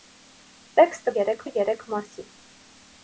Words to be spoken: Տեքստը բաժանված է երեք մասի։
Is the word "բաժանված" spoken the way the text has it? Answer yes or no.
no